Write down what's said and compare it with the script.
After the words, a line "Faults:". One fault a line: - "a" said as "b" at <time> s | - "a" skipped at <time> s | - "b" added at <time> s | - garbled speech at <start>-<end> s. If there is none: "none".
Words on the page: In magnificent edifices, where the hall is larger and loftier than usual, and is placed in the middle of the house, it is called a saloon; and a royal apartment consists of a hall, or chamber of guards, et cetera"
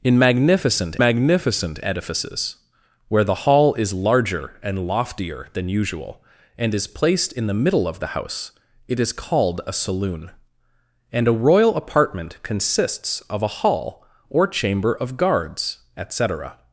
In magnificent magnificent edifices, where the hall is larger and loftier than usual, and is placed in the middle of the house, it is called a saloon; and a royal apartment consists of a hall, or chamber of guards, et cetera"
Faults:
- "magnificent" added at 1.0 s